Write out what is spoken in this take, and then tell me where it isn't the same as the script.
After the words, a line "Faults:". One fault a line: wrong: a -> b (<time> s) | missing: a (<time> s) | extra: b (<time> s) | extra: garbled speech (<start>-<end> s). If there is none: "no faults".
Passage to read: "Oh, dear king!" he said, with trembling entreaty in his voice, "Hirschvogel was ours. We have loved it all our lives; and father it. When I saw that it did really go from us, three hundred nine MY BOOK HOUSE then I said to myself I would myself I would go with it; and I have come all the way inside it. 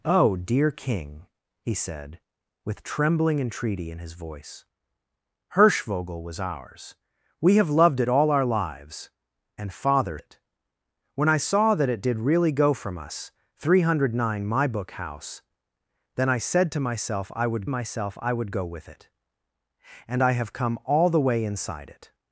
"Oh, dear king!" he said, with trembling entreaty in his voice, "Hirschvogel was ours. We have loved it all our lives; and father it. When I saw that it did really go from us, three hundred nine MY BOOK HOUSE then I said to myself I would myself I would go with it; and I have come all the way inside it.
Faults:
no faults